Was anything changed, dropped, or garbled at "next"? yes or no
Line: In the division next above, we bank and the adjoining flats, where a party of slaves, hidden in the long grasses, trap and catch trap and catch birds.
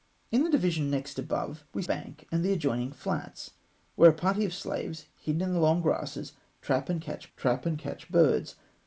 no